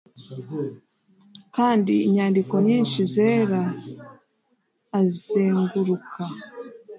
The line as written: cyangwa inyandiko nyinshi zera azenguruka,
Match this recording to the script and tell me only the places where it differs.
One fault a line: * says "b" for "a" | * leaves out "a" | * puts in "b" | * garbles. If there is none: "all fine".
* says "kandi" for "cyangwa"